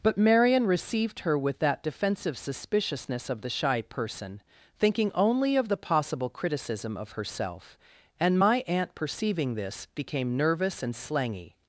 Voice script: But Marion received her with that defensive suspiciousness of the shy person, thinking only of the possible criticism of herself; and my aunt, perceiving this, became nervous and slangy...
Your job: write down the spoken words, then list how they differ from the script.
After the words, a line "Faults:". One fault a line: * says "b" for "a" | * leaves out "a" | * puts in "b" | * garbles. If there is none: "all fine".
But Marion received her with that defensive suspiciousness of the shy person, thinking only of the possible criticism of herself; and my aunt, perceiving this, became nervous and slangy...
Faults:
all fine